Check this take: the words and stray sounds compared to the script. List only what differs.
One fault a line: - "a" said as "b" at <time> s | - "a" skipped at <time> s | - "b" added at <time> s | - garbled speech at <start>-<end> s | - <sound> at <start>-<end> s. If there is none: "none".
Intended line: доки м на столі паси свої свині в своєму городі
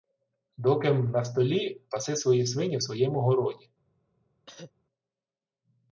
- cough at 4.5-4.7 s